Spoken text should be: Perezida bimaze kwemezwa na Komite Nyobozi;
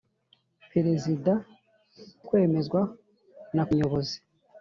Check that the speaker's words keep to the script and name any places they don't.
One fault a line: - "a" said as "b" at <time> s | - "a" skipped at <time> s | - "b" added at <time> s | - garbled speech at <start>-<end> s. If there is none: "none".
- "bimaze" skipped at 1.3 s
- "Komite" skipped at 3.6 s